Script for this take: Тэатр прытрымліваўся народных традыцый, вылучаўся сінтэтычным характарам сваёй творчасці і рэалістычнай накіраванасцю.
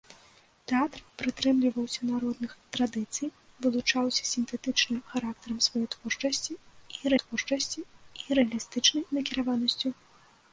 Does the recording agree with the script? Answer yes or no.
no